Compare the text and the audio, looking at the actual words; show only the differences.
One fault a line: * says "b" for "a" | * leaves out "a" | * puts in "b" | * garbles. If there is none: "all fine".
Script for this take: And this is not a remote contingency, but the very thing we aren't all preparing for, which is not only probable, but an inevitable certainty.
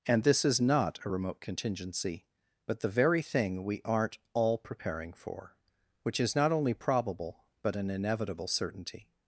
all fine